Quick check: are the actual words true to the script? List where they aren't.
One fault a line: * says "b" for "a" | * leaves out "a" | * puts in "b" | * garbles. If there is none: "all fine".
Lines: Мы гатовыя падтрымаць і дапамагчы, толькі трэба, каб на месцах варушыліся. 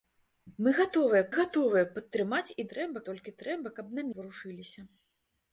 * puts in "гатовыя"
* says "трэба" for "дапамагчы"
* leaves out "месцах"